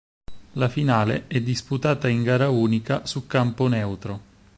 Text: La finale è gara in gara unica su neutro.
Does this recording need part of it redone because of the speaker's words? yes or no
yes